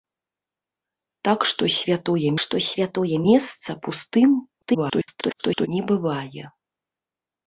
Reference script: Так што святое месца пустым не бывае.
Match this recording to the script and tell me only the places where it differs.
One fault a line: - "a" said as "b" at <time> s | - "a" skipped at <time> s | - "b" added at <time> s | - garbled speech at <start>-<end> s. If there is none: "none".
- "што святое" added at 2.4 s
- garbled speech at 4.6-5.7 s